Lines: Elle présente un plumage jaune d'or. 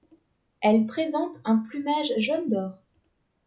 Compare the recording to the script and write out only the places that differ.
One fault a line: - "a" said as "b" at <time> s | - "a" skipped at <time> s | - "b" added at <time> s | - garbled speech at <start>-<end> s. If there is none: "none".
none